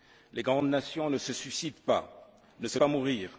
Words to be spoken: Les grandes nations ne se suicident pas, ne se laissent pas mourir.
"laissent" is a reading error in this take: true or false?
true